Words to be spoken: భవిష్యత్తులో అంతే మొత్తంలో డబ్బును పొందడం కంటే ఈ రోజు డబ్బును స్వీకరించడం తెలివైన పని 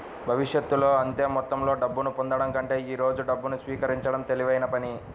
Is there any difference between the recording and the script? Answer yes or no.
no